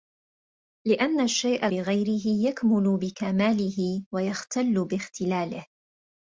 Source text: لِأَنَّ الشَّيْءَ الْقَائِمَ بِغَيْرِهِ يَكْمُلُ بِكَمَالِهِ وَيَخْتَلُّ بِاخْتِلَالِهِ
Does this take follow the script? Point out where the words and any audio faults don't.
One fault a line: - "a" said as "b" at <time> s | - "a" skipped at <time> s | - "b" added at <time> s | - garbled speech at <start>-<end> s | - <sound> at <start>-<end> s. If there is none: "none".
- "الْقَائِمَ" skipped at 1.7 s